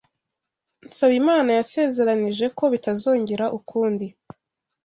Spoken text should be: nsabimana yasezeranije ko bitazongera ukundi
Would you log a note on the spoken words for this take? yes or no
no